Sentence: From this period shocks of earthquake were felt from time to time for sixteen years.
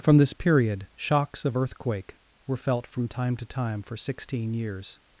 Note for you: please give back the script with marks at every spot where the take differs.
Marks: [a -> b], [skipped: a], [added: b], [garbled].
From this period shocks of earthquake were felt from time to time for sixteen years.